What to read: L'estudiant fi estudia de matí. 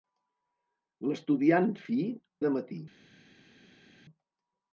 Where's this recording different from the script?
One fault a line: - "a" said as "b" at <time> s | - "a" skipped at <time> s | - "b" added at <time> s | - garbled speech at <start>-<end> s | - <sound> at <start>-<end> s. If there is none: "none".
- "estudia" skipped at 2.0 s